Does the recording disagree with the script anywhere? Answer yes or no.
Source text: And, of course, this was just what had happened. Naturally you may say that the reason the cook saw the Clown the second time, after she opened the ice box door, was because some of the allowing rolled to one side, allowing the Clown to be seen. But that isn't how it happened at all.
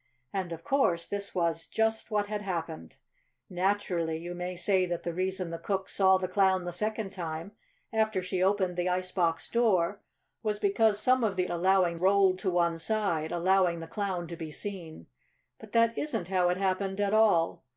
no